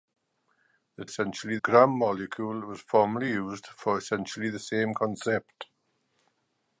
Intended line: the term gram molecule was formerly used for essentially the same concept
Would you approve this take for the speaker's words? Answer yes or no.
no